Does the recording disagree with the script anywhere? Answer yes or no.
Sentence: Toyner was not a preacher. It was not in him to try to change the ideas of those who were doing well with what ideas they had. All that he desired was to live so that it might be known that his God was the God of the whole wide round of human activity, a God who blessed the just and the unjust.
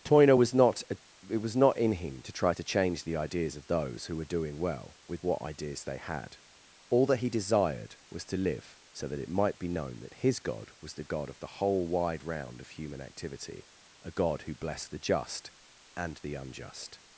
yes